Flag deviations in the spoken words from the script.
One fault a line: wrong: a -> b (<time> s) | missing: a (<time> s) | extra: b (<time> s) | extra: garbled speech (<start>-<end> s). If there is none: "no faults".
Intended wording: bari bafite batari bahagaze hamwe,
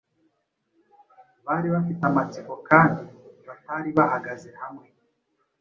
extra: amatsiko kandi (2.1 s)